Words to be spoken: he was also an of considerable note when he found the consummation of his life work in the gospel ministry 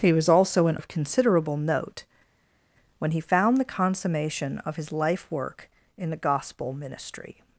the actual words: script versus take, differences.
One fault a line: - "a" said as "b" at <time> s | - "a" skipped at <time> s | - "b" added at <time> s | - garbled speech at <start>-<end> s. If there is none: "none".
none